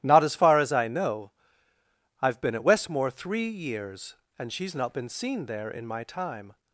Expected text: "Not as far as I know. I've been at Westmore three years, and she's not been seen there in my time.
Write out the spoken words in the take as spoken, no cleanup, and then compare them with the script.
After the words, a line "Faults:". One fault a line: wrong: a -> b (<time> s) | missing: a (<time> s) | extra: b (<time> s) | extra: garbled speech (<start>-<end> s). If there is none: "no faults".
"Not as far as I know. I've been at Westmore three years, and she's not been seen there in my time.
Faults:
no faults